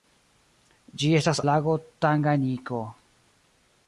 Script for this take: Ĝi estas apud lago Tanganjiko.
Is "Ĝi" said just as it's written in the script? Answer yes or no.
yes